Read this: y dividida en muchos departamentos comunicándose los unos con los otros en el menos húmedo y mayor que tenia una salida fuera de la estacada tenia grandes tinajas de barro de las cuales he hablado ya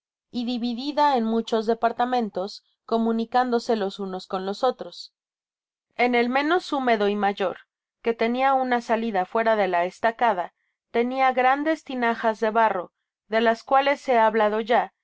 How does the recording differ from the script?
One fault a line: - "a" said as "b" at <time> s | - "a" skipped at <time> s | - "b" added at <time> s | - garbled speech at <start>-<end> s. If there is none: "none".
none